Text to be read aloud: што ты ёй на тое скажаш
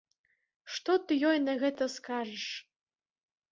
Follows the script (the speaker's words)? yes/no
no